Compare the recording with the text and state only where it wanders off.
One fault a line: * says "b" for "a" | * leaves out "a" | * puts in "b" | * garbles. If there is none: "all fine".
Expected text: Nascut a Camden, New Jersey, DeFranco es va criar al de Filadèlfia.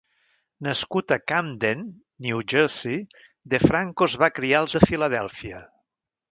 all fine